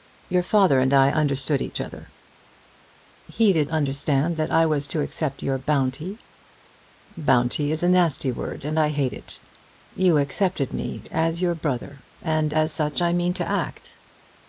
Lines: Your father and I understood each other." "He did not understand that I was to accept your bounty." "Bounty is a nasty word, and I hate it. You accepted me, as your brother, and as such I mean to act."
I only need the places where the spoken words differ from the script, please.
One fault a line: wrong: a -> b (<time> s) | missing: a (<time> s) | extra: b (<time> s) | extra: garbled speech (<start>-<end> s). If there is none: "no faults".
missing: not (3.7 s)